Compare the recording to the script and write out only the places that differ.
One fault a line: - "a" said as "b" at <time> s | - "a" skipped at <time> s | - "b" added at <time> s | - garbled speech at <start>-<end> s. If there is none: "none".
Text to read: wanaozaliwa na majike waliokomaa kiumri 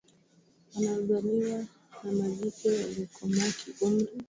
none